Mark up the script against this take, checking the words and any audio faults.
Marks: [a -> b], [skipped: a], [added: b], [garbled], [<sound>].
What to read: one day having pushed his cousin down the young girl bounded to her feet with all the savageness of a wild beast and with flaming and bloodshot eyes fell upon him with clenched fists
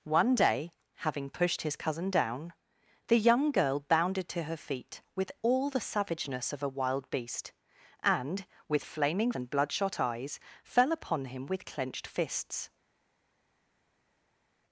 one day having pushed his cousin down the young girl bounded to her feet with all the savageness of a wild beast and with flaming and bloodshot eyes fell upon him with clenched fists